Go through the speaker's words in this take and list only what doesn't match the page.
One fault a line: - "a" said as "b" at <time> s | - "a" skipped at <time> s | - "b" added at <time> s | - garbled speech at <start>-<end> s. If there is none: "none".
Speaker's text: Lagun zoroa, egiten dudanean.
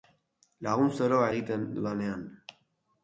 none